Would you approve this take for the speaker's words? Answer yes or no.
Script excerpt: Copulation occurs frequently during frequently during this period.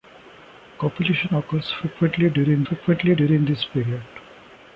yes